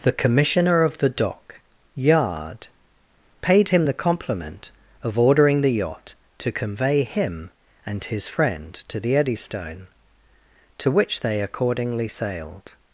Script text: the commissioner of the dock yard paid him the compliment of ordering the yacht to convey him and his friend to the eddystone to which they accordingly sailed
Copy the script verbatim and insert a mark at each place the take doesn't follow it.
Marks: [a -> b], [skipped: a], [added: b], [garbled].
the commissioner of the dock yard paid him the compliment of ordering the yacht to convey him and his friend to the eddystone to which they accordingly sailed